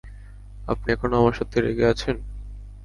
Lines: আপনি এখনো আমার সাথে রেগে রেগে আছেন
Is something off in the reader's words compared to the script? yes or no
yes